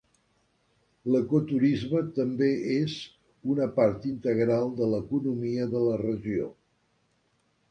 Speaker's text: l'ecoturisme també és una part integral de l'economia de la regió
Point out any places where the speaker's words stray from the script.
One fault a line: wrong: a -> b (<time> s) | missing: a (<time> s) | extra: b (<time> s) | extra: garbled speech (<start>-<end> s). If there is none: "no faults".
no faults